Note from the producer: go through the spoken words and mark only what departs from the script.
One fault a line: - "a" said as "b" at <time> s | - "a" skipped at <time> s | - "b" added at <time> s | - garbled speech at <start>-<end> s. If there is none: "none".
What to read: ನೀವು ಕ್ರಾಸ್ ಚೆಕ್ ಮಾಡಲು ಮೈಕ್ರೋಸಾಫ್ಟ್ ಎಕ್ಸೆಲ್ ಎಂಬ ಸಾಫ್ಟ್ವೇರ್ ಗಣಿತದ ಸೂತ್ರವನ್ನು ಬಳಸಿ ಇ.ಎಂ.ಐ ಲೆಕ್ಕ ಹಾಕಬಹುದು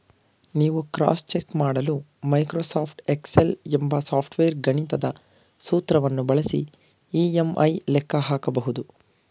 none